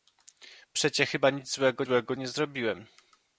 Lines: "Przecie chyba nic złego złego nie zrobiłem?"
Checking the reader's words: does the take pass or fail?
pass